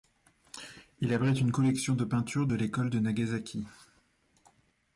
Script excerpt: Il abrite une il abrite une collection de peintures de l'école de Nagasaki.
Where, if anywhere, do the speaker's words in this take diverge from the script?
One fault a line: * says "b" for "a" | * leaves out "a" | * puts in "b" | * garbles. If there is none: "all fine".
* leaves out "il abrite une"